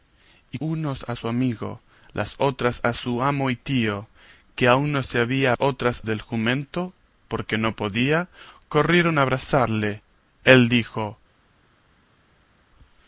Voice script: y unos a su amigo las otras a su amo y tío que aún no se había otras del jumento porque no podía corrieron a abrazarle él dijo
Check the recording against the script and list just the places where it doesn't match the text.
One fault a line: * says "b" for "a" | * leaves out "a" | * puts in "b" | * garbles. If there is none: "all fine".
all fine